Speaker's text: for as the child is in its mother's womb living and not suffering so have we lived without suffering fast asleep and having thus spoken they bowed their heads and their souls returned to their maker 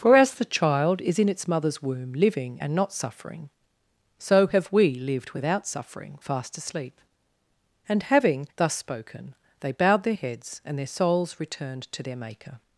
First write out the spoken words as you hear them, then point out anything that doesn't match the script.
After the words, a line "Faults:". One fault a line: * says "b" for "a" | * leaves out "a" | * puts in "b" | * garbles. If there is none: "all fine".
for as the child is in its mother's womb living and not suffering so have we lived without suffering fast asleep and having thus spoken they bowed their heads and their souls returned to their maker
Faults:
all fine